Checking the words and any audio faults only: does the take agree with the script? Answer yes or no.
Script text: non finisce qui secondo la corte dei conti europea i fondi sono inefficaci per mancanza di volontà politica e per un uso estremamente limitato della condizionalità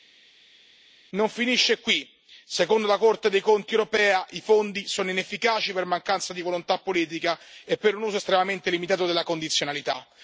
yes